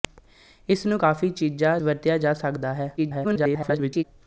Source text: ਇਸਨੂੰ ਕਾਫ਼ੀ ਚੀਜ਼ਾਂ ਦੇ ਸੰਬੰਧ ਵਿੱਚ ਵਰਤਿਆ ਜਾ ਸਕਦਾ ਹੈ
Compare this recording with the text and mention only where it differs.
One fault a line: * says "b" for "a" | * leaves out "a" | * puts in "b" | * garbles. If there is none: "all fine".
* leaves out "ਦੇ ਸੰਬੰਧ ਵਿੱਚ"
* garbles